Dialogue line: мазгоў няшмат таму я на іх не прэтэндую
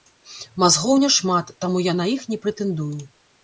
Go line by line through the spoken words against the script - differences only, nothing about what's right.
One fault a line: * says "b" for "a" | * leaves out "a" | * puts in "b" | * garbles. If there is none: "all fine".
all fine